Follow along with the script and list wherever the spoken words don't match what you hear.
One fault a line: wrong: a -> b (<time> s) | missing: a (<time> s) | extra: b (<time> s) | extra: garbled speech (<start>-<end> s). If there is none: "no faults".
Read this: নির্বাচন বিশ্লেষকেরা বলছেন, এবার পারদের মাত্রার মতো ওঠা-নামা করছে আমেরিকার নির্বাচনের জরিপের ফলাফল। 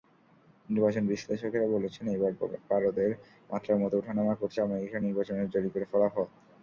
no faults